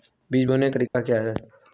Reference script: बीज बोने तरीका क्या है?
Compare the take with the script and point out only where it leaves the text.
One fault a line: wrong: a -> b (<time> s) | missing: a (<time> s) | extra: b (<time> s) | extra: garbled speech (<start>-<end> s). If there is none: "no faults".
no faults